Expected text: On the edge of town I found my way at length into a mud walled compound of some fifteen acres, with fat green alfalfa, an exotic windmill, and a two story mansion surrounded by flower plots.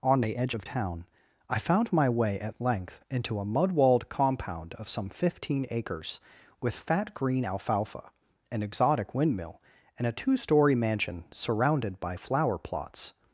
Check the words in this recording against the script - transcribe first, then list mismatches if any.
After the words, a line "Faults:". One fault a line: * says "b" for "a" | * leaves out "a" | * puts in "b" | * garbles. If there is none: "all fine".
On the edge of town I found my way at length into a mud walled compound of some fifteen acres, with fat green alfalfa, an exotic windmill, and a two story mansion surrounded by flower plots.
Faults:
all fine